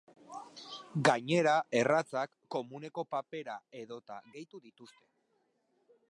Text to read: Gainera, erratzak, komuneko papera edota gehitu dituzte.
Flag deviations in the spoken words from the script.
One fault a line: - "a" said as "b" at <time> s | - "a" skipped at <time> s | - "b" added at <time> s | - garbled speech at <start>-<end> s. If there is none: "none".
none